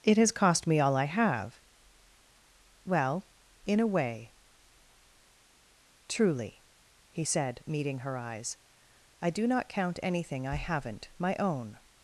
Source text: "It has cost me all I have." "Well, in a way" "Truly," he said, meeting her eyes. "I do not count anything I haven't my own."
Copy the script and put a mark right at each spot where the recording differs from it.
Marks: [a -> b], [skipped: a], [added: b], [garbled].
"It has cost me all I have." "Well, in a way" "Truly," he said, meeting her eyes. "I do not count anything I haven't my own."